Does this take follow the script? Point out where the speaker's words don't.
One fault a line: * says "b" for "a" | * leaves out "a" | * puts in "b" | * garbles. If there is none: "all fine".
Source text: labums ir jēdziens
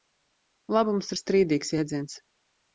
* puts in "strīdīgs"